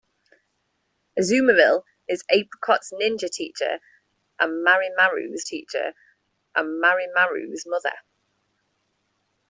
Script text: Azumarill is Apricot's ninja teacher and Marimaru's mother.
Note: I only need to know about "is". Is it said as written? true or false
true